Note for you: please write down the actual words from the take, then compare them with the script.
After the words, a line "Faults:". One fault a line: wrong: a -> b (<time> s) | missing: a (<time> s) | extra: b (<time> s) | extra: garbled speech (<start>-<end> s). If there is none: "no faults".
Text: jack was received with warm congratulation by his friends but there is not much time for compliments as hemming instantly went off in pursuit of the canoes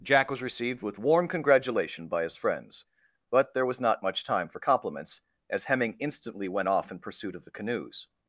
jack was received with warm congratulation by his friends but there was not much time for compliments as hemming instantly went off in pursuit of the canoes
Faults:
wrong: is -> was (3.7 s)